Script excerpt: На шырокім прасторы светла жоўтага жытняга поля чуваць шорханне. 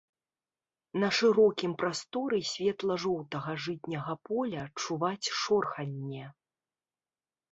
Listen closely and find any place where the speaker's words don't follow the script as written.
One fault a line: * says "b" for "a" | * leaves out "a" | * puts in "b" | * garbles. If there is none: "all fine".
all fine